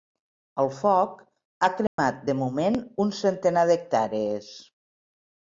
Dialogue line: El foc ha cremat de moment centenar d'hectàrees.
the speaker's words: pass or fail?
fail